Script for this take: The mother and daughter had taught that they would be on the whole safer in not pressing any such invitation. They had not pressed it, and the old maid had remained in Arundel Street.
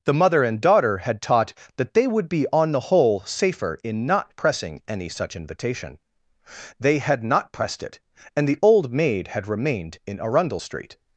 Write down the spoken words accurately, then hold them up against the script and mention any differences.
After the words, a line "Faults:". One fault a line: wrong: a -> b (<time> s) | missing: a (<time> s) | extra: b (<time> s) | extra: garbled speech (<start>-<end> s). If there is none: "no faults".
The mother and daughter had taught that they would be on the whole safer in not pressing any such invitation. They had not pressed it, and the old maid had remained in Arundel Street.
Faults:
no faults